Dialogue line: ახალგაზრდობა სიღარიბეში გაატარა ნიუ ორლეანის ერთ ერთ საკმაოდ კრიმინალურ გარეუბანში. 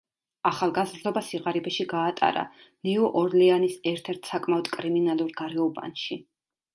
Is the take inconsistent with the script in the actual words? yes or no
no